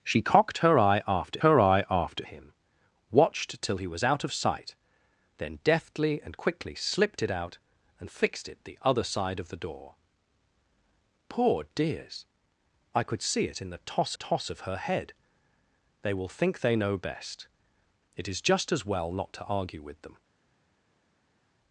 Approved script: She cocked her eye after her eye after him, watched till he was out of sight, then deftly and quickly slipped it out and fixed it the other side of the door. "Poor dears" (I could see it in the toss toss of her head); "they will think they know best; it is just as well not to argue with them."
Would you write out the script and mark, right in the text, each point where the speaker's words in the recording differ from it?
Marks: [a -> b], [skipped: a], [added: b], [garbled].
She cocked her eye after her eye after him, watched till he was out of sight, then deftly and quickly slipped it out and fixed it the other side of the door. "Poor dears" (I could see it in the toss toss of her head); "they will think they know best; it is just as well not to argue with them."